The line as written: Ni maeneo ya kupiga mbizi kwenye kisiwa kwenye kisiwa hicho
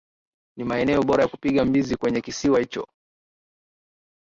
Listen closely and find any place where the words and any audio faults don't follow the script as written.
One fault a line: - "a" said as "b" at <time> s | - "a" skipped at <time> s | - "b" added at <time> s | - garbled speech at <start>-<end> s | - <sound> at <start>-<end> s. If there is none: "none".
- "bora" added at 1.0 s
- "kwenye kisiwa" skipped at 2.6 s